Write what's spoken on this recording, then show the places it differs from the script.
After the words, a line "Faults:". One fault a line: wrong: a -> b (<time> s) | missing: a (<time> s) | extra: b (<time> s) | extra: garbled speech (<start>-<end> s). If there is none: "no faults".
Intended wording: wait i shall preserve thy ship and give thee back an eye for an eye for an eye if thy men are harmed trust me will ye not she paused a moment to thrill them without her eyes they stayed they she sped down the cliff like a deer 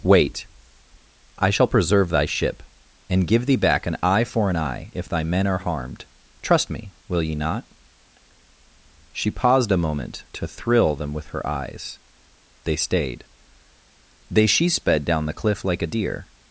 wait i shall preserve thy ship and give thee back an eye for an eye if thy men are harmed trust me will ye not she paused a moment to thrill them with her eyes they stayed they she sped down the cliff like a deer
Faults:
missing: for an eye (4.9 s)
wrong: without -> with (11.1 s)